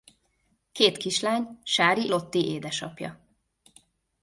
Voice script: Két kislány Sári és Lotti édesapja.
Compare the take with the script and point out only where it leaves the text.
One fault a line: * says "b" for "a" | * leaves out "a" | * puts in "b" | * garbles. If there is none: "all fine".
* leaves out "és"